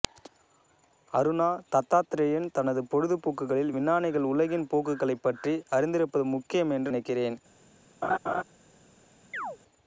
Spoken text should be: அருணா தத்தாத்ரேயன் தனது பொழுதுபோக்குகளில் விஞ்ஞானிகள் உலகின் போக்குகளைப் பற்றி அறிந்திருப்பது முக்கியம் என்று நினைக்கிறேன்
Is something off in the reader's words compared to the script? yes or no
no